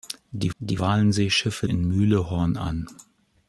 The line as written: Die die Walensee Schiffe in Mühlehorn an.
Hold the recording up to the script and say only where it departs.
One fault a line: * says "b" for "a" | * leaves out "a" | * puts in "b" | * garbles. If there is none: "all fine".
all fine